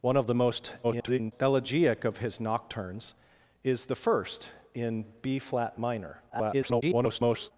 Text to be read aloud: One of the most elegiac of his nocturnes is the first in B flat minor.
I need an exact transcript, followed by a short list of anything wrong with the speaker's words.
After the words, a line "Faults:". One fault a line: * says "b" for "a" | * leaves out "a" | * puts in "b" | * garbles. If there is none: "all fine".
One of the most [garbled] elegiac of his nocturnes is the first in B flat minor. [garbled]
Faults:
* garbles
* garbles